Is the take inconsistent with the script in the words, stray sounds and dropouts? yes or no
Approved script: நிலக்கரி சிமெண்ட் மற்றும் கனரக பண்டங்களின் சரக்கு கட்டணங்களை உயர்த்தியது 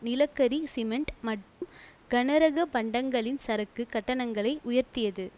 yes